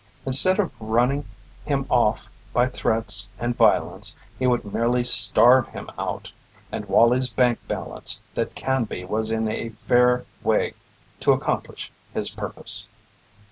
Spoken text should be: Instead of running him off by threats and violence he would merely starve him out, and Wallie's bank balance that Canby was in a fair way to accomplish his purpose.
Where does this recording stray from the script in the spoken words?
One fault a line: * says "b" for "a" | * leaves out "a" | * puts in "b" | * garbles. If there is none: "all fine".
all fine